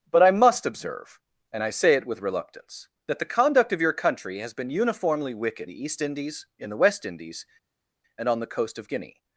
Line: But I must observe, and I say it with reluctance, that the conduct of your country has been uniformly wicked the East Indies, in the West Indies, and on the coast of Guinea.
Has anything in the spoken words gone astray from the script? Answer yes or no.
no